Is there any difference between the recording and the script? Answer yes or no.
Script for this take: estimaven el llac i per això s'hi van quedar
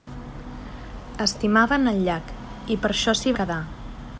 yes